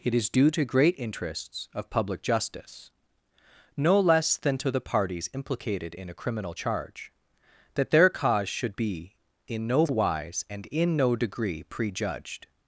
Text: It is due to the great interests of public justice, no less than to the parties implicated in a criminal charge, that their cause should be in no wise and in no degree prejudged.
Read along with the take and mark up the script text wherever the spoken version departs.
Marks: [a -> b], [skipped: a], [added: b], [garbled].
It is due to [skipped: the] great interests of public justice, no less than to the parties implicated in a criminal charge, that their cause should be in no wise and in no degree prejudged.